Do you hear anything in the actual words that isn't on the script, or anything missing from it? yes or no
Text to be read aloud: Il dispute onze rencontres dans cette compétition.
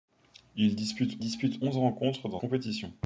yes